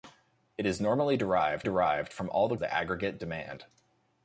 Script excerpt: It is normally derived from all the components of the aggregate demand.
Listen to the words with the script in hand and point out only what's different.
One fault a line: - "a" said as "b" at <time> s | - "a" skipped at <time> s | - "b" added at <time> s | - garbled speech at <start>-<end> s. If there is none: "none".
- "derived" added at 1.6 s
- "components of" skipped at 2.6 s